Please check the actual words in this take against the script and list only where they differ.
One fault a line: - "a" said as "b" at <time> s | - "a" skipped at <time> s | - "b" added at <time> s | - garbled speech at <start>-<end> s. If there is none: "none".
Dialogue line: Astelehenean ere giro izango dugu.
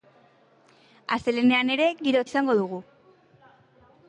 none